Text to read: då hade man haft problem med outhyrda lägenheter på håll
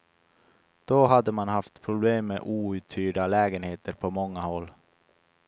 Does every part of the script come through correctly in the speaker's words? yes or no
no